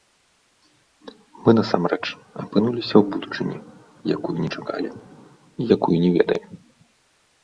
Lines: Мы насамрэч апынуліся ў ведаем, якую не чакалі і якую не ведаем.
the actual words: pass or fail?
fail